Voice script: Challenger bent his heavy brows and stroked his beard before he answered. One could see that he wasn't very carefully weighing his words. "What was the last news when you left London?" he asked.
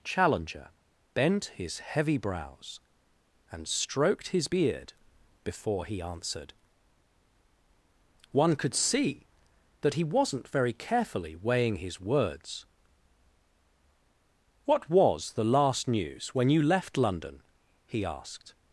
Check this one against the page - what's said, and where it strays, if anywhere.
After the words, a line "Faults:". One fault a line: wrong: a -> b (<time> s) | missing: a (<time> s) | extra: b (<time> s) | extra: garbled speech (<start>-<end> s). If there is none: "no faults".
Challenger bent his heavy brows and stroked his beard before he answered. One could see that he wasn't very carefully weighing his words. "What was the last news when you left London?" he asked.
Faults:
no faults